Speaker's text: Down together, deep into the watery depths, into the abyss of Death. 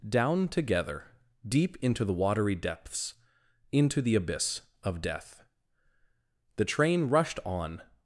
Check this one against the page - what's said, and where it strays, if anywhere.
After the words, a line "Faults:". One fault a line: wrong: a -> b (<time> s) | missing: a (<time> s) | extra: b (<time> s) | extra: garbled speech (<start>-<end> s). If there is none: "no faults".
Down together, deep into the watery depths, into the abyss of Death. The train rushed on
Faults:
extra: The train rushed on (6.5 s)